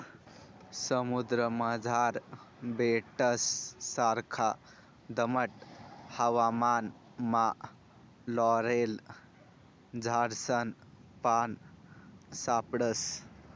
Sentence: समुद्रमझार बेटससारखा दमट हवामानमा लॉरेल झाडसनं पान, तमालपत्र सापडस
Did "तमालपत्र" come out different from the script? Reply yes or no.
yes